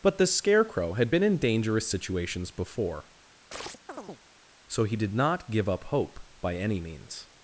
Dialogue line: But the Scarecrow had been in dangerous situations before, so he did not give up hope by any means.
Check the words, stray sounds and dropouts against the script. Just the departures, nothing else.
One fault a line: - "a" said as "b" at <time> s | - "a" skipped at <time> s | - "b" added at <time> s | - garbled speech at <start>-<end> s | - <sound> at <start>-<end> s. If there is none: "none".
- chirp at 3.5-4.2 s